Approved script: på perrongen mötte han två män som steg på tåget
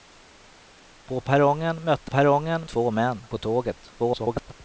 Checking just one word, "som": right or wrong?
wrong